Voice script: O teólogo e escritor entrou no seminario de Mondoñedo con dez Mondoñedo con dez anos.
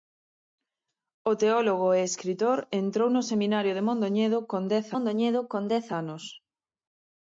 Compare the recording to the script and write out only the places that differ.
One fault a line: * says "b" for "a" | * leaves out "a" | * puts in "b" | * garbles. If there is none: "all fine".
all fine